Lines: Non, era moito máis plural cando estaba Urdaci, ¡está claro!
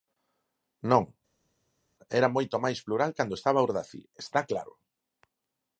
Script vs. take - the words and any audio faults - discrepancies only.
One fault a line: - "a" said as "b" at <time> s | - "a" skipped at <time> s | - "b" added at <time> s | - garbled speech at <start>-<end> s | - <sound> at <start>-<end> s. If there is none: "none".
none